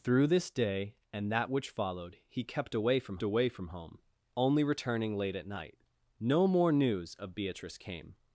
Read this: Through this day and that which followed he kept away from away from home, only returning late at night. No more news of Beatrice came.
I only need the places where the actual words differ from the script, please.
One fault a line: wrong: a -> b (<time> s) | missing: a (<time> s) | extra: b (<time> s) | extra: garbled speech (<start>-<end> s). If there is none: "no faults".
no faults